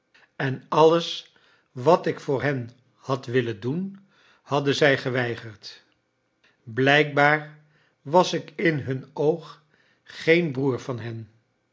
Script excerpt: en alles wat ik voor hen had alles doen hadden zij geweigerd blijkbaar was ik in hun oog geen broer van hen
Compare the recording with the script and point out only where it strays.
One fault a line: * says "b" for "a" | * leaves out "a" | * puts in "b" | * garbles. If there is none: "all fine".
* says "willen" for "alles"